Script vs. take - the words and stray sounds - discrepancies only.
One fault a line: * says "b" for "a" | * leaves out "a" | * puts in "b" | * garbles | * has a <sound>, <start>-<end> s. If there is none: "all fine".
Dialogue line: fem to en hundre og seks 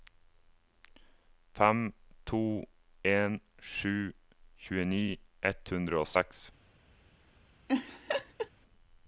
* puts in "sju tjueni ett"
* has a laugh, 7.7-8.5 s